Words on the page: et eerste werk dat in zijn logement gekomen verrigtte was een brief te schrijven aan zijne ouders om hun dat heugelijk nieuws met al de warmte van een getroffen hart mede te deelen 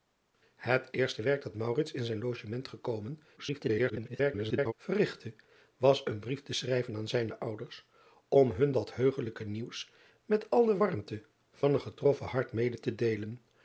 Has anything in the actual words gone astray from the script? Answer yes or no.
yes